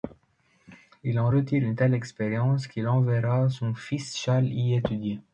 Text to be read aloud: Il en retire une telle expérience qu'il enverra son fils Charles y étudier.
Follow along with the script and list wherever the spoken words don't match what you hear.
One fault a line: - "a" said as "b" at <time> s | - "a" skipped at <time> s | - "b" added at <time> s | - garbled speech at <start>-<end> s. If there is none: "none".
none